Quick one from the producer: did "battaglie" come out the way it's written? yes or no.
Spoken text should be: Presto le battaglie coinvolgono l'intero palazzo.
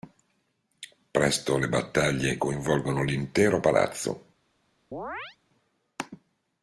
yes